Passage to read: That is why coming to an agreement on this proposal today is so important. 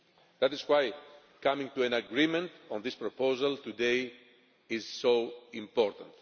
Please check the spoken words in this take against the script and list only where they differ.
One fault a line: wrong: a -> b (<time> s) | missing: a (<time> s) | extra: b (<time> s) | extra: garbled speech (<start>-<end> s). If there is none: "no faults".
no faults